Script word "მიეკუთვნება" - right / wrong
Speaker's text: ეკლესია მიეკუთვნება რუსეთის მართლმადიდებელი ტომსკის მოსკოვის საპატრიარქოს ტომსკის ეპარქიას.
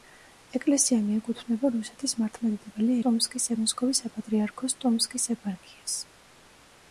right